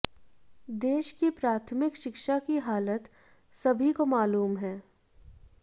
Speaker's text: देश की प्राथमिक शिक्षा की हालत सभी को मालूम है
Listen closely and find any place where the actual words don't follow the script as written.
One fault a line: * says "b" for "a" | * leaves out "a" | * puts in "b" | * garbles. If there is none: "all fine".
all fine